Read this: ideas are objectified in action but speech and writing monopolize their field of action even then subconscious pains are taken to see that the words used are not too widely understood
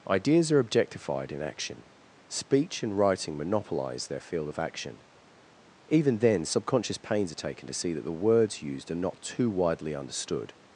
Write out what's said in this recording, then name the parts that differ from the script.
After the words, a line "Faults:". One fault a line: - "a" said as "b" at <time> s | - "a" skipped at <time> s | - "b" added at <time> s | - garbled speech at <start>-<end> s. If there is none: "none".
ideas are objectified in action speech and writing monopolize their field of action even then subconscious pains are taken to see that the words used are not too widely understood
Faults:
- "but" skipped at 1.9 s